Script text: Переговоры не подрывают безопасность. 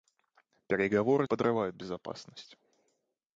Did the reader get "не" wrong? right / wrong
wrong